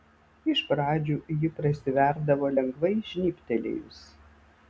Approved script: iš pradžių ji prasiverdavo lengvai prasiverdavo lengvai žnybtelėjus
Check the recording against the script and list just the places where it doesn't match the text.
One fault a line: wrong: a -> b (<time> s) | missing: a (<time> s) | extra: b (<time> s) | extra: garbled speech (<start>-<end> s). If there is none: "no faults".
missing: prasiverdavo lengvai (2.9 s)